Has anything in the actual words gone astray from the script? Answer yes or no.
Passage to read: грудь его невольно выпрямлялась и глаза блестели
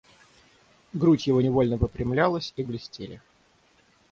yes